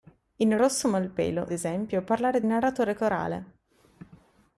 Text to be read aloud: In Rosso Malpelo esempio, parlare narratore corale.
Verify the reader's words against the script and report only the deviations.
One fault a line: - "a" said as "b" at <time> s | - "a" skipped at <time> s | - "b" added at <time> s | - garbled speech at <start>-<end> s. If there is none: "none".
none